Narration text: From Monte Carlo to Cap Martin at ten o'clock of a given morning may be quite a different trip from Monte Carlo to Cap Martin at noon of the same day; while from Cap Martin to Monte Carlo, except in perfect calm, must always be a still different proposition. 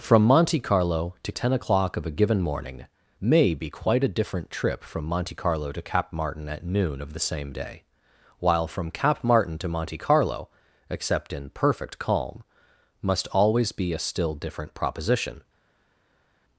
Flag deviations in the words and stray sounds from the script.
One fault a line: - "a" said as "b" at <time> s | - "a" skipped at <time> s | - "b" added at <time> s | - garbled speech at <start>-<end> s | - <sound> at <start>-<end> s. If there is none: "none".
- "Cap Martin at" skipped at 1.3 s